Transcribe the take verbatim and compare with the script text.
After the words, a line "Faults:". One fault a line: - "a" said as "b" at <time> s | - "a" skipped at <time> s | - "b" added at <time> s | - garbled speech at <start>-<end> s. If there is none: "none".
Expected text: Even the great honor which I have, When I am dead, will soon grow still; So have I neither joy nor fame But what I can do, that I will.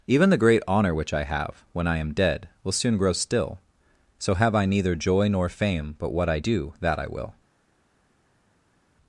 Even the great honor which I have, When I am dead, will soon grow still; So have I neither joy nor fame But what I do, that I will.
Faults:
- "can" skipped at 6.4 s